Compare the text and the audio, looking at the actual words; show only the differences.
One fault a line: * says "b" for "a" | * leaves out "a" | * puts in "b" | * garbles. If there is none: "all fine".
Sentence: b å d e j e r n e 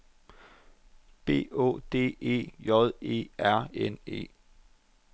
all fine